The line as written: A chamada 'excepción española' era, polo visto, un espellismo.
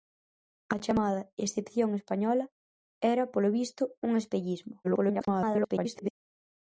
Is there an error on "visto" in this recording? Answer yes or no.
no